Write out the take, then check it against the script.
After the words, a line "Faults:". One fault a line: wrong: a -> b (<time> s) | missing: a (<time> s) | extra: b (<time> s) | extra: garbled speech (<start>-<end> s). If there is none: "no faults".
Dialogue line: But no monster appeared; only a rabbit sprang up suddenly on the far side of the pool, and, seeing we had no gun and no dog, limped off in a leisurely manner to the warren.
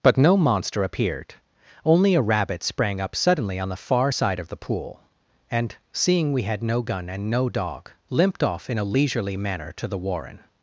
But no monster appeared; only a rabbit sprang up suddenly on the far side of the pool, and, seeing we had no gun and no dog, limped off in a leisurely manner to the warren.
Faults:
no faults